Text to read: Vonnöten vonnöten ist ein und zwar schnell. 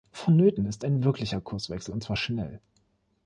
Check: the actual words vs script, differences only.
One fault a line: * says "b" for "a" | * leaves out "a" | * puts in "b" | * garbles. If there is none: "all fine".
* leaves out "vonnöten"
* puts in "wirklicher Kurswechsel"